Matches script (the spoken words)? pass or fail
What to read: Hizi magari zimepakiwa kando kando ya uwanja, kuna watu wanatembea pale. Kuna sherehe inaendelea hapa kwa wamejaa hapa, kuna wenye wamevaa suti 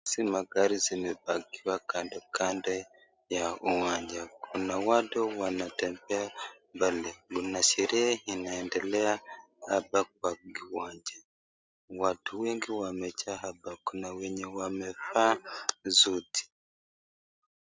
fail